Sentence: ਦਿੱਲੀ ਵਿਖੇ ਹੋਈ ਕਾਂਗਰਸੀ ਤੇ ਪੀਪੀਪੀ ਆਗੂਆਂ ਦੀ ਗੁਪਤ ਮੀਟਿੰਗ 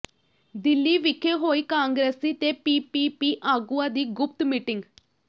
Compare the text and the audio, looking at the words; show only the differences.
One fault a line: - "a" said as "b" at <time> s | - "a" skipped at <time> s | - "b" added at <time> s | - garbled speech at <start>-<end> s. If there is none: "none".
none